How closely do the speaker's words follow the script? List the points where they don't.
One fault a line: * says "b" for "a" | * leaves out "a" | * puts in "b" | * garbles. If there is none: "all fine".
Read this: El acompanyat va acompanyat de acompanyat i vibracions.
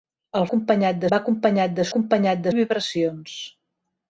all fine